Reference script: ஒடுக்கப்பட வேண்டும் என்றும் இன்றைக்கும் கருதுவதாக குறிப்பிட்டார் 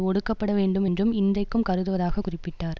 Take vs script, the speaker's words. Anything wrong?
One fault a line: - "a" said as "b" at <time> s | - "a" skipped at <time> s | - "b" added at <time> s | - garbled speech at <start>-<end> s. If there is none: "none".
none